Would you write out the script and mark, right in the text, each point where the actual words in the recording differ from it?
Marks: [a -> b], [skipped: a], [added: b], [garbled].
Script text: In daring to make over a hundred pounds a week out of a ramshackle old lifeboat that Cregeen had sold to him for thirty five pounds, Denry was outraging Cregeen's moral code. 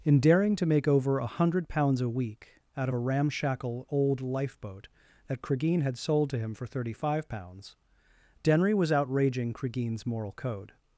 In daring to make over a hundred pounds a week out of a ramshackle old lifeboat that Cregeen had sold to him for thirty five pounds, Denry was outraging Cregeen's moral code.